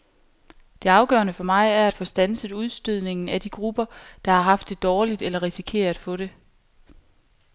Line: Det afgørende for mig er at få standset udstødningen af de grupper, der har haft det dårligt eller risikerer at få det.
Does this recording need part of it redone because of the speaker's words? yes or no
no